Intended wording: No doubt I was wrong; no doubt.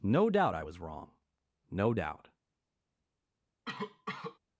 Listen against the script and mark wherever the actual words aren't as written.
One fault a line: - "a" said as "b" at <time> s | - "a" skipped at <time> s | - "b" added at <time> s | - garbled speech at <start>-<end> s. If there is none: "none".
none